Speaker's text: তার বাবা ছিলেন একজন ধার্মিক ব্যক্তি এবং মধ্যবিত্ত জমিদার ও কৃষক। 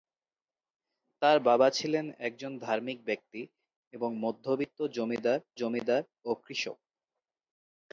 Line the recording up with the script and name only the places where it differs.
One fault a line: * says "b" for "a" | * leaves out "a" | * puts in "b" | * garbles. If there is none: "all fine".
* puts in "জমিদার"